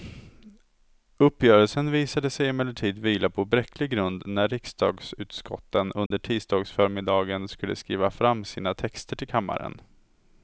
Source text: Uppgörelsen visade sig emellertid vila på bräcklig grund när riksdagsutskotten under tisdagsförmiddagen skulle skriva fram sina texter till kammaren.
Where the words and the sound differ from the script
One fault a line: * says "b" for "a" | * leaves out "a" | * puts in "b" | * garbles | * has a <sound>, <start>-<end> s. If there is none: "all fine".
* has a dropout, 6.1-6.1 s